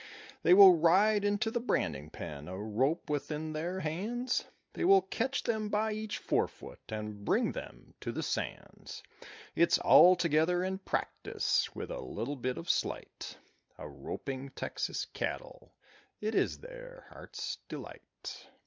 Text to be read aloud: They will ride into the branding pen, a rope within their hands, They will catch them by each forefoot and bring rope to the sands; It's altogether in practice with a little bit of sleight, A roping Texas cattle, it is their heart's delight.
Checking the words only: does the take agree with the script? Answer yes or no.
no